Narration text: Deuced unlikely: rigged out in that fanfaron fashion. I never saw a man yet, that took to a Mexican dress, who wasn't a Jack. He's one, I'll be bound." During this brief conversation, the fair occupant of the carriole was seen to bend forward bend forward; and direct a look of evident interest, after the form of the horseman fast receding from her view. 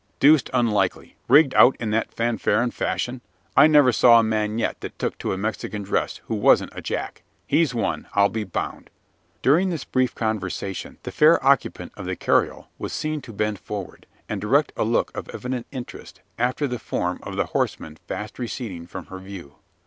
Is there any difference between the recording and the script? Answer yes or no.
yes